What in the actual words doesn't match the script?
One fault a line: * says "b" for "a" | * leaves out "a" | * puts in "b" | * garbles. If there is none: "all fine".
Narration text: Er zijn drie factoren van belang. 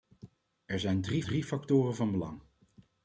* puts in "drie"